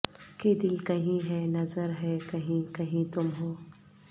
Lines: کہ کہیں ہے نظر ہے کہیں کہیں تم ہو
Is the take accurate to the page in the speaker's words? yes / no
no